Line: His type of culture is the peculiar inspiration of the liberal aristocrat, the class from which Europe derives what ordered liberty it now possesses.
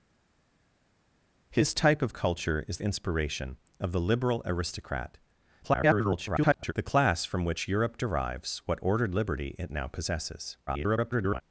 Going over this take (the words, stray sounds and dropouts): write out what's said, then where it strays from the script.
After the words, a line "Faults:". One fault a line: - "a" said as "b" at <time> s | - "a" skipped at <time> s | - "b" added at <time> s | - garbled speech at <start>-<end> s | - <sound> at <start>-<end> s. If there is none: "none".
His type of culture is inspiration of the liberal aristocrat, [garbled] the class from which Europe derives what ordered liberty it now possesses. [garbled]
Faults:
- "the peculiar" skipped at 2.8 s
- garbled speech at 5.6-6.7 s
- garbled speech at 10.7-11.4 s